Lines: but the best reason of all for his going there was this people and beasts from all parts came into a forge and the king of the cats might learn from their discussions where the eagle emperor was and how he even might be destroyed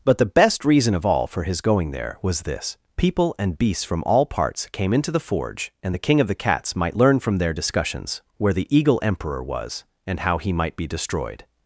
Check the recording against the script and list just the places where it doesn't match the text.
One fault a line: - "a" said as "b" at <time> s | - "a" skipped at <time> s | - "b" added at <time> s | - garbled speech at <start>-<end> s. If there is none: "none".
- "a" said as "the" at 5.1 s
- "even" skipped at 10.5 s